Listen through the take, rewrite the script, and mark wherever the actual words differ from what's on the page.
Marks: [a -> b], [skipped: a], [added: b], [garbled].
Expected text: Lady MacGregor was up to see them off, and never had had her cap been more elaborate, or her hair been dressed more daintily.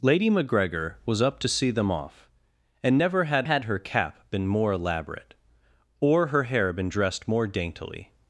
Lady MacGregor was up to see them off, and never had had her cap been more elaborate, or her hair been dressed more daintily.